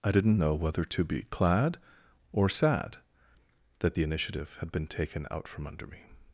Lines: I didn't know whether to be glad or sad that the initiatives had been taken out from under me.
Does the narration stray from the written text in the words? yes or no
yes